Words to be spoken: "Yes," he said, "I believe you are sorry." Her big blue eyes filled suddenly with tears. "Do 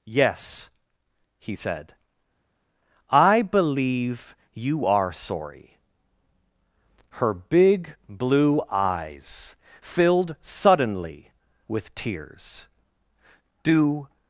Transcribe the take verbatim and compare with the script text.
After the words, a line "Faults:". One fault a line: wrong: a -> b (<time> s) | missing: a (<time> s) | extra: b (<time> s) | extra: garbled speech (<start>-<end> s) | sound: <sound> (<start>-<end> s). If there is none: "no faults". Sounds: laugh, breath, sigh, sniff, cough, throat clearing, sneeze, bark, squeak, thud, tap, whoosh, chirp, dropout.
"Yes," he said, "I believe you are sorry." Her big blue eyes filled suddenly with tears. "Do
Faults:
no faults